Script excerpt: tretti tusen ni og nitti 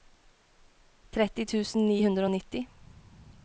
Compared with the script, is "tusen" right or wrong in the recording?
right